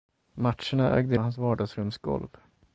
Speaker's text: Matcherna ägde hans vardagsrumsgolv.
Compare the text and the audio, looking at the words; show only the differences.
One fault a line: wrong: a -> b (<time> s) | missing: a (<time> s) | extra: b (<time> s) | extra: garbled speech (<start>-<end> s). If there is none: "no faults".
no faults